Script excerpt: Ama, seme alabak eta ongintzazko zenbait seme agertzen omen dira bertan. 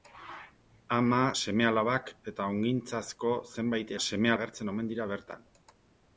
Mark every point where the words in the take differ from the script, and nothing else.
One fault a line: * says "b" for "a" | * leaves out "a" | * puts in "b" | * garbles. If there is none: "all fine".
all fine